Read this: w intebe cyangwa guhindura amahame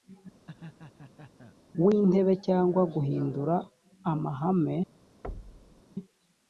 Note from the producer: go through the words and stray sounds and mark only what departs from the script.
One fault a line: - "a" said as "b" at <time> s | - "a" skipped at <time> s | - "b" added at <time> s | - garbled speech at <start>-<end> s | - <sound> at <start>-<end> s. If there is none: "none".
- laugh at 0.5-1.6 s
- thud at 5.2-5.8 s